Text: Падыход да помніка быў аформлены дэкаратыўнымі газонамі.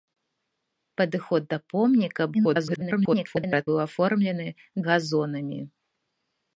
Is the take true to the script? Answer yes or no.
no